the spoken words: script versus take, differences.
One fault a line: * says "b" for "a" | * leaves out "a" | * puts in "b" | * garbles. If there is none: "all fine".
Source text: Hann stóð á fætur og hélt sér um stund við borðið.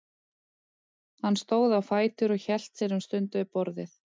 all fine